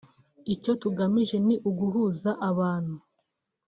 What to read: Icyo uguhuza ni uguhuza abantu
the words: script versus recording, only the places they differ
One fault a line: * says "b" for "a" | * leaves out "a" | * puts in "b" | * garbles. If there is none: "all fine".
* says "tugamije" for "uguhuza"